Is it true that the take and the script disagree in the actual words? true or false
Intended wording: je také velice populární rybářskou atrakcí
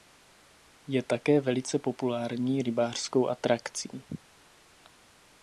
false